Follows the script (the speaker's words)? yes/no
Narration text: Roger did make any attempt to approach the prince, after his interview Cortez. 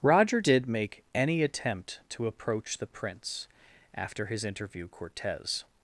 yes